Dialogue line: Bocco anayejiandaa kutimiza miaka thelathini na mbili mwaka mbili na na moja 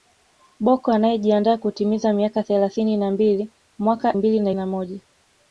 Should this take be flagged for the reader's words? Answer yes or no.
no